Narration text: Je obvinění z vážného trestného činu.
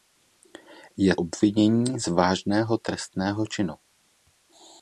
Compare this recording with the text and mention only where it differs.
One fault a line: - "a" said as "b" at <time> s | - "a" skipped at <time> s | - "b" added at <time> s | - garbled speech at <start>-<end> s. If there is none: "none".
none